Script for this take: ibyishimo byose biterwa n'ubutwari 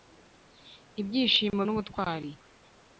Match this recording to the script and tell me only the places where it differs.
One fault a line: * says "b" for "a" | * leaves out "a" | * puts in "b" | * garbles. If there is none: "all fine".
* leaves out "byose biterwa"